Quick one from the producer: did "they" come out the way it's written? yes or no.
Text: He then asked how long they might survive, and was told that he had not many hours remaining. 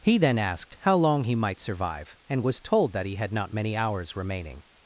no